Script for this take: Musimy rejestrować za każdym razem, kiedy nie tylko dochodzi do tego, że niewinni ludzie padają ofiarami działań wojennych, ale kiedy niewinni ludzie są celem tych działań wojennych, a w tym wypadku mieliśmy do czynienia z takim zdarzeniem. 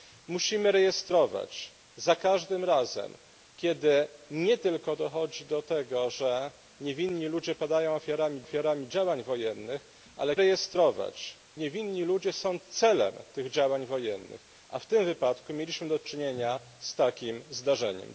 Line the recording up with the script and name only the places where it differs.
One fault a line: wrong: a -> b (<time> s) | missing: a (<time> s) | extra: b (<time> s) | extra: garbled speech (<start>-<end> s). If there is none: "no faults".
extra: ofiarami (8.4 s)
wrong: kiedy -> rejestrować (10.4 s)